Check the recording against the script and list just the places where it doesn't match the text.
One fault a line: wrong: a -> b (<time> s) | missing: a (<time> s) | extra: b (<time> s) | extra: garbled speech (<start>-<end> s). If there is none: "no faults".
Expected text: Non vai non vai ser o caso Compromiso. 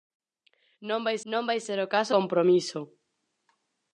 no faults